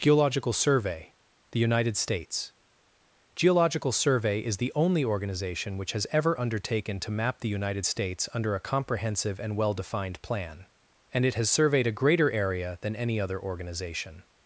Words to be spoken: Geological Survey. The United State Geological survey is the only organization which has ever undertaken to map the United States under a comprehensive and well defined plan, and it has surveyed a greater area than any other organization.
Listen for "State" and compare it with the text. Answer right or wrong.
wrong